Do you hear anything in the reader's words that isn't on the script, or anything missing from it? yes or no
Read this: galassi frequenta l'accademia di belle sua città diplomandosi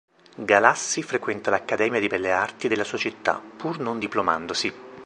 yes